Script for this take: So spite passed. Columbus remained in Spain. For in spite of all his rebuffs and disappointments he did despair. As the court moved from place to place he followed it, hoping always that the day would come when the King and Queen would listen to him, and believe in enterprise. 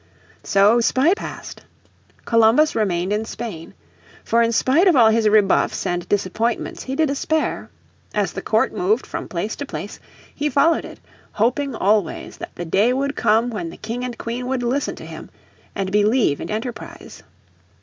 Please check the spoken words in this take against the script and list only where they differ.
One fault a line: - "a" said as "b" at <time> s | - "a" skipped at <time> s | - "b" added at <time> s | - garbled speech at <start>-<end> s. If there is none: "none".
none